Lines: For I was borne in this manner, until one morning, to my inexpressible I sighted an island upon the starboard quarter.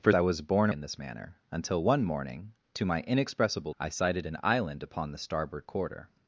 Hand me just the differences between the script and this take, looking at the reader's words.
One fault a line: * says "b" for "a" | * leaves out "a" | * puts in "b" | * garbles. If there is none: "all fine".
all fine